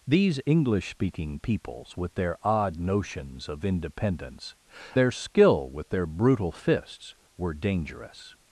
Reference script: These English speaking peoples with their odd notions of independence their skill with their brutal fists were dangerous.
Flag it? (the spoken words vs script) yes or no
no